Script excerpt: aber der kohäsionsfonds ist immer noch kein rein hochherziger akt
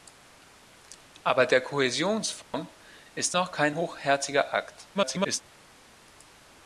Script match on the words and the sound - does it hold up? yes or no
no